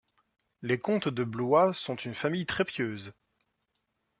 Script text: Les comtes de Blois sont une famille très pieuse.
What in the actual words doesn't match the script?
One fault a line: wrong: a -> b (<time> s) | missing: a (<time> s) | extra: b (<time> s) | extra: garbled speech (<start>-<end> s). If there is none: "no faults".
no faults